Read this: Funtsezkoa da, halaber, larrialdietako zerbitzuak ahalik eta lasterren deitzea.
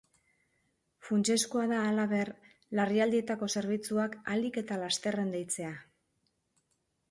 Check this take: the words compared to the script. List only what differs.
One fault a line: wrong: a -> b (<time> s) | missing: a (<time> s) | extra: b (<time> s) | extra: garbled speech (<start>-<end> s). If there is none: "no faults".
no faults